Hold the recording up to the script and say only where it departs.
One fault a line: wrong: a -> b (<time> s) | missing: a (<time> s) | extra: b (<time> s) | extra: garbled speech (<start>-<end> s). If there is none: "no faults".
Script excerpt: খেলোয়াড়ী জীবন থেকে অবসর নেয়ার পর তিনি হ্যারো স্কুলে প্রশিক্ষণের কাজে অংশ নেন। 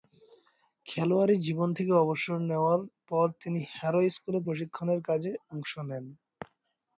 no faults